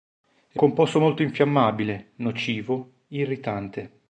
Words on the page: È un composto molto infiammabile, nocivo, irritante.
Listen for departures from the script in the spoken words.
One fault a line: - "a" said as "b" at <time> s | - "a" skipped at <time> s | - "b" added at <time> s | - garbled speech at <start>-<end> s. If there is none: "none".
- "un" skipped at 0.6 s